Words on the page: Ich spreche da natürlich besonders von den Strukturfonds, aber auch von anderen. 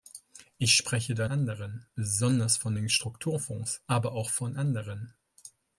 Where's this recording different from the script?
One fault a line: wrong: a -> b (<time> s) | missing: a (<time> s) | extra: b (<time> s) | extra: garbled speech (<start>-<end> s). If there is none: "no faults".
wrong: natürlich -> anderen (1.3 s)